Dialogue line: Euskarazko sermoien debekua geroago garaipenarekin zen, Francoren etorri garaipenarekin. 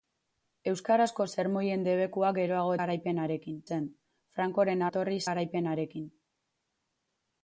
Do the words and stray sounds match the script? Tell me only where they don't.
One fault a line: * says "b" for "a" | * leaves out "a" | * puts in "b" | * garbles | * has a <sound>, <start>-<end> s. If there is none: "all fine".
all fine